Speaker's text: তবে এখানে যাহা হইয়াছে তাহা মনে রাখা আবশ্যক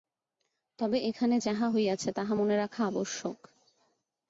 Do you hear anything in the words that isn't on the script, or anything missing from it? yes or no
no